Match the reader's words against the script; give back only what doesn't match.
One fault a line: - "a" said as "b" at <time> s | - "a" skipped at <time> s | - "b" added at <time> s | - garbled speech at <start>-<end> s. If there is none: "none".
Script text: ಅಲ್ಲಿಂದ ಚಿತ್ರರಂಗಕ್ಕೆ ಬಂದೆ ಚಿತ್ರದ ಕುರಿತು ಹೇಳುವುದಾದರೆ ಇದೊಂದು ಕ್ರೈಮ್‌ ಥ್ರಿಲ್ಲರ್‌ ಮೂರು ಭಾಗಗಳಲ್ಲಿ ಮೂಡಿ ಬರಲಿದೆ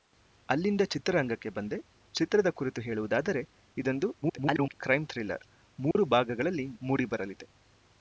- garbled speech at 4.2-4.7 s